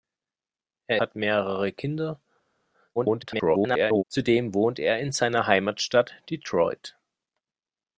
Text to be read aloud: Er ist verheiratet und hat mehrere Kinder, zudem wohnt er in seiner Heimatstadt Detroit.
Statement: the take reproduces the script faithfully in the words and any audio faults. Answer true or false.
false